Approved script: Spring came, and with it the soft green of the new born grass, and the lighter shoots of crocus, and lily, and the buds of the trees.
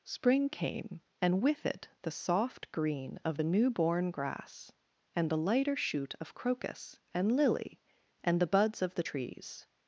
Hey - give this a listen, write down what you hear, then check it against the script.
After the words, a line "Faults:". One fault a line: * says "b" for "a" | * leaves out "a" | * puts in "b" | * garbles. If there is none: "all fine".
Spring came, and with it the soft green of the new born grass, and the lighter shoot of crocus, and lily, and the buds of the trees.
Faults:
* says "shoot" for "shoots"